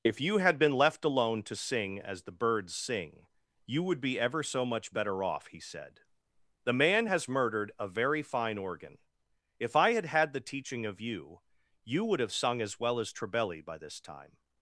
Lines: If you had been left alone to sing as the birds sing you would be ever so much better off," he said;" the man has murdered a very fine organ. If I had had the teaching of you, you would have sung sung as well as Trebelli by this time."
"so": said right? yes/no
yes